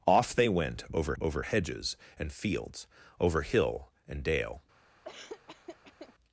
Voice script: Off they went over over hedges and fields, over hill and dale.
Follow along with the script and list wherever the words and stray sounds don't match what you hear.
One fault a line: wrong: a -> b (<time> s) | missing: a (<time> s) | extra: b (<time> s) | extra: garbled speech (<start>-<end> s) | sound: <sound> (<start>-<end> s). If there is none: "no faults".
sound: laugh (5.0-6.1 s)